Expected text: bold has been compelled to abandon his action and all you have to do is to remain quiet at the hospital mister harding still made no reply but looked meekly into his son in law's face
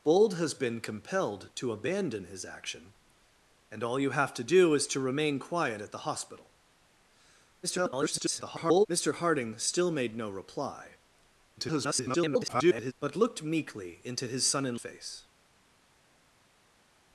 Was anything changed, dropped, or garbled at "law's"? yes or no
yes